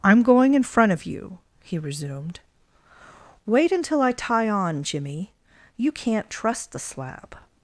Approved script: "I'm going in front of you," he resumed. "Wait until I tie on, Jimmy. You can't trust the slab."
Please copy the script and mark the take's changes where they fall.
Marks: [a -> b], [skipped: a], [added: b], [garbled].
"I'm going in front of you," he resumed. "Wait until I tie on, Jimmy. You can't trust the slab."